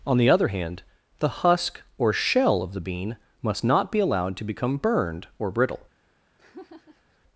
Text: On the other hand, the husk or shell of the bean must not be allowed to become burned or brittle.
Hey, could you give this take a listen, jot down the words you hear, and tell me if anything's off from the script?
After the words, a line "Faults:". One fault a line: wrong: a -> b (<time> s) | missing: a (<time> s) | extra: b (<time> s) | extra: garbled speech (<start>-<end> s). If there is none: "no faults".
On the other hand, the husk or shell of the bean must not be allowed to become burned or brittle.
Faults:
no faults